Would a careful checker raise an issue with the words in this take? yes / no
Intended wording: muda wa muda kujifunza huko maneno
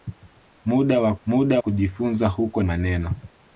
no